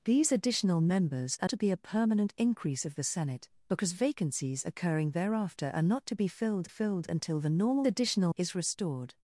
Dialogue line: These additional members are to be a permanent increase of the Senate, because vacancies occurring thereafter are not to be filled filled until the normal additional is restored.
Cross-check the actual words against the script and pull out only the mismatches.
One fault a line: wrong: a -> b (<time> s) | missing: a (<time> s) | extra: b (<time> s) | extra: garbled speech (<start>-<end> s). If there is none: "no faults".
no faults